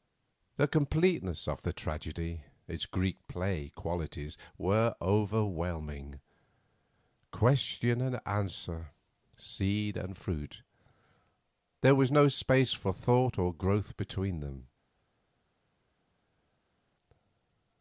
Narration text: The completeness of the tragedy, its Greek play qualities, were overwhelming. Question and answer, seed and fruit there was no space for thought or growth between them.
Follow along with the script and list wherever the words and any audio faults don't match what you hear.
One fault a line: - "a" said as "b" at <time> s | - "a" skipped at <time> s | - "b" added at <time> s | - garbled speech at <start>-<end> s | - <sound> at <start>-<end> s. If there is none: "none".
none